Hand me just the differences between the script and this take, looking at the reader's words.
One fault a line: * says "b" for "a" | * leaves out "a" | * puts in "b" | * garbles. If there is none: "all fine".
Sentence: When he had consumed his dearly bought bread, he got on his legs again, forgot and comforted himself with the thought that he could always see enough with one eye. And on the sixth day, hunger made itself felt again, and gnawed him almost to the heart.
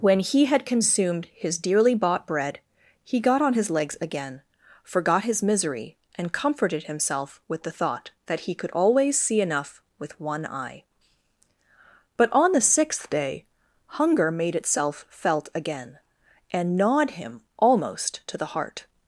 * puts in "his misery"
* says "But" for "And"